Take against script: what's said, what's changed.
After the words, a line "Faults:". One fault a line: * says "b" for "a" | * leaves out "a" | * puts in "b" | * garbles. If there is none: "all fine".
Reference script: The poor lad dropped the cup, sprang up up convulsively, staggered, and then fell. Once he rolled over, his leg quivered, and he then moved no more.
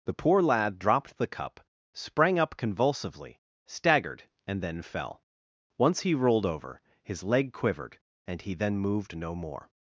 The poor lad dropped the cup, sprang up convulsively, staggered, and then fell. Once he rolled over, his leg quivered, and he then moved no more.
Faults:
* leaves out "up"